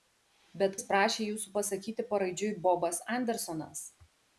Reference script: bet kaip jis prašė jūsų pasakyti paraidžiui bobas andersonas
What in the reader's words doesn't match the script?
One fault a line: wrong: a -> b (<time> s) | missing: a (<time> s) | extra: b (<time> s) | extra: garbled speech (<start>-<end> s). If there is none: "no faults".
missing: kaip (0.8 s)